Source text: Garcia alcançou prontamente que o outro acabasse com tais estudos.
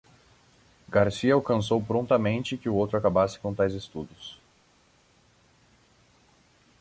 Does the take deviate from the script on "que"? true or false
false